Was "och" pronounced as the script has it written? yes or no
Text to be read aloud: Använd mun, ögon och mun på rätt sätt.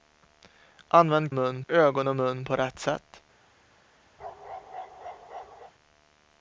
yes